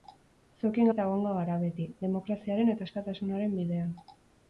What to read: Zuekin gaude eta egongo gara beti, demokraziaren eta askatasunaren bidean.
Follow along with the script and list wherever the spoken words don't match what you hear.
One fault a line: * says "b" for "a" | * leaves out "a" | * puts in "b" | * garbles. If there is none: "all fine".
* leaves out "gaude"